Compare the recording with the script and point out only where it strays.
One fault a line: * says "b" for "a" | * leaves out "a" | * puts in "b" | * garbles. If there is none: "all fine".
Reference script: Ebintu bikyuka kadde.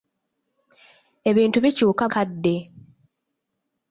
all fine